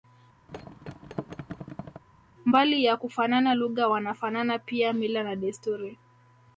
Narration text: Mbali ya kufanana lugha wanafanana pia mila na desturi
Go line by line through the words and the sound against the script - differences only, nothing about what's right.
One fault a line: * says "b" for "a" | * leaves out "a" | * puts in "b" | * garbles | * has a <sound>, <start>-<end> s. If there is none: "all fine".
* has a thud, 0.5-2.0 s